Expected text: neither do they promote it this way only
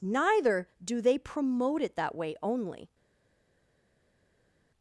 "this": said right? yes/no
no